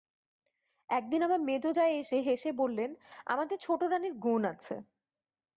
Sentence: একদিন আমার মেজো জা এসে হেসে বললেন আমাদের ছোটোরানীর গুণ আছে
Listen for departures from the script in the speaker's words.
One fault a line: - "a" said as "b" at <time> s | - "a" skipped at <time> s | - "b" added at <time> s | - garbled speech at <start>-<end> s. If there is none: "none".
none